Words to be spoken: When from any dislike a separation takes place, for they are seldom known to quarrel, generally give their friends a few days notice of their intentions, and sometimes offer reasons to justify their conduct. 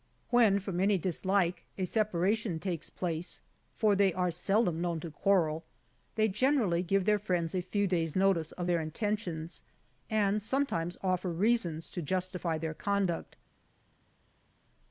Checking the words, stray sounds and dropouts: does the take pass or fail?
fail